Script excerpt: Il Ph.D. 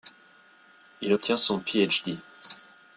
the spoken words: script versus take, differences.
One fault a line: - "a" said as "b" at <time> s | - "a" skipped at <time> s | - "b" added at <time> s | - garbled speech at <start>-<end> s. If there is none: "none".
- "obtient son" added at 1.1 s